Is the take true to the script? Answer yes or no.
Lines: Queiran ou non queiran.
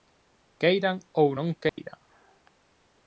yes